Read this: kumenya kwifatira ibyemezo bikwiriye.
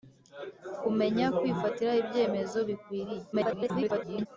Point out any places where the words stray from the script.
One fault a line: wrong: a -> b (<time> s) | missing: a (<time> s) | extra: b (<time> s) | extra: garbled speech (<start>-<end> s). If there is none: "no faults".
extra: garbled speech (3.3-4.3 s)